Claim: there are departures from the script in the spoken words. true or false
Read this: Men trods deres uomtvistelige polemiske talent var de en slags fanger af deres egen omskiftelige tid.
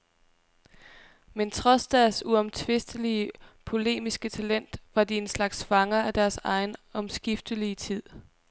false